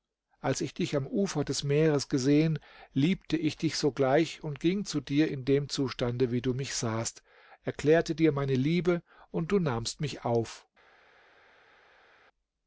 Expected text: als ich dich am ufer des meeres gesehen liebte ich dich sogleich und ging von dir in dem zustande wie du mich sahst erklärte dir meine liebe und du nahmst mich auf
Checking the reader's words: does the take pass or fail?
fail